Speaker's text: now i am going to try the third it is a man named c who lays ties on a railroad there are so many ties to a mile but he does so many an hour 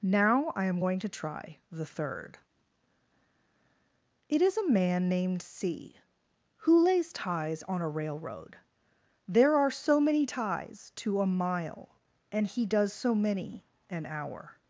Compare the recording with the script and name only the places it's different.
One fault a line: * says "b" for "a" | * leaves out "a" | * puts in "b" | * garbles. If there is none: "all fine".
* says "and" for "but"